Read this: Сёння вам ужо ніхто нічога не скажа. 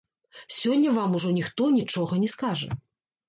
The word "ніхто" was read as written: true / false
true